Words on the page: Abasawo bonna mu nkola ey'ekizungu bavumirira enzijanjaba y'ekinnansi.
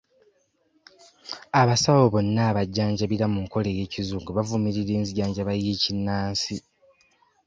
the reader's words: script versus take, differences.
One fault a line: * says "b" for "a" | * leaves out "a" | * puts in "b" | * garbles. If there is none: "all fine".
* puts in "abajjanjabira"